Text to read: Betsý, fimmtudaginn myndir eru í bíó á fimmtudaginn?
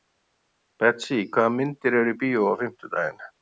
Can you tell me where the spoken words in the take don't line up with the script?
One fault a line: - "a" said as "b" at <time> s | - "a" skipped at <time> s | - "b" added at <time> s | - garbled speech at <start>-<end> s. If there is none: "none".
- "fimmtudaginn" said as "hvaða" at 1.4 s